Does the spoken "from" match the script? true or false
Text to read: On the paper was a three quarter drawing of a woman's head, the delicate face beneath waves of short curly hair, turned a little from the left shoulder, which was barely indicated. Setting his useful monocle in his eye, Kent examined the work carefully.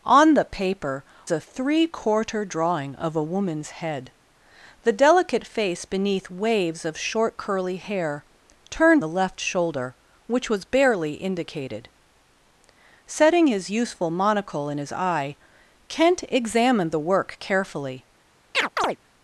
false